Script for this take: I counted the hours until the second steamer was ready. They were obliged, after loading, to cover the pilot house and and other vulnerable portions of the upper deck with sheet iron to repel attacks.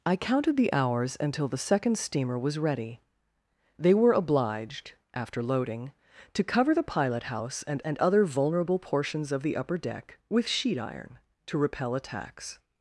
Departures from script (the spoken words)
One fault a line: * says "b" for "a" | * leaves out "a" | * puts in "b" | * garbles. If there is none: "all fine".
all fine